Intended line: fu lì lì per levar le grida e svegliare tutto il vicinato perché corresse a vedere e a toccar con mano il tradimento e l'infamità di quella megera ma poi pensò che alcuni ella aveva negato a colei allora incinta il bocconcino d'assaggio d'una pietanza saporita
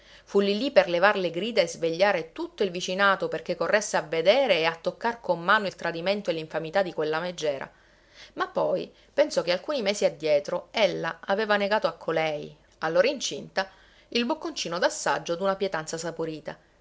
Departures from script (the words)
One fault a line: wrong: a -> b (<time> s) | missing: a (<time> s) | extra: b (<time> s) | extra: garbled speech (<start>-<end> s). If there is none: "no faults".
extra: mesi addietro (9.8 s)